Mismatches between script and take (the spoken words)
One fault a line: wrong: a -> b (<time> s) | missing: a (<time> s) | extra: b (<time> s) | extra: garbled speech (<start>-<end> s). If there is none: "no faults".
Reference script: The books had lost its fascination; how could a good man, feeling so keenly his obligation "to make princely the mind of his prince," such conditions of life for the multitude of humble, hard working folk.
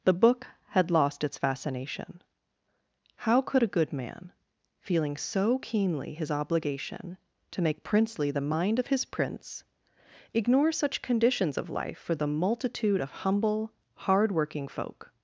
wrong: books -> book (0.1 s)
extra: ignore (10.3 s)